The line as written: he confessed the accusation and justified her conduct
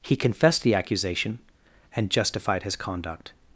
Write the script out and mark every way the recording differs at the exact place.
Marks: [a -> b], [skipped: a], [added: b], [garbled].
he confessed the accusation and justified [her -> his] conduct